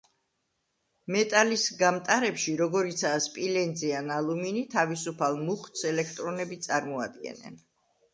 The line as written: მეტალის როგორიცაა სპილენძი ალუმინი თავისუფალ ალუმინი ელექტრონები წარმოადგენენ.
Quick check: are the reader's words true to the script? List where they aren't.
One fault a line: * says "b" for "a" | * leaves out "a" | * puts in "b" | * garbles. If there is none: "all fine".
* puts in "გამტარებში"
* puts in "ან"
* says "მუხტს" for "ალუმინი"